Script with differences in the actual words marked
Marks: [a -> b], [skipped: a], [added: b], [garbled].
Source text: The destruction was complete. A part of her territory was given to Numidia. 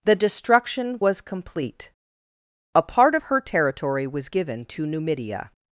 The destruction was complete. A part of her territory was given to Numidia.